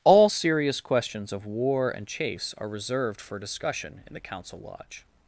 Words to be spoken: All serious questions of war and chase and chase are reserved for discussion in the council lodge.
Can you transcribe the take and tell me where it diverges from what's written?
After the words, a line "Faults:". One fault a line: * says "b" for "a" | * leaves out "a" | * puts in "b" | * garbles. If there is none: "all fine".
All serious questions of war and chase are reserved for discussion in the council lodge.
Faults:
* leaves out "and chase"